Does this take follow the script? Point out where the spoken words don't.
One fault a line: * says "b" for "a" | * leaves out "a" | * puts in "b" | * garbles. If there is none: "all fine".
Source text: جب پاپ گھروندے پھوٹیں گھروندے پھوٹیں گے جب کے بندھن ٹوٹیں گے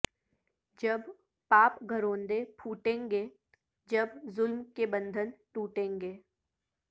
* leaves out "گھروندے پھوٹیں"
* puts in "ظلم"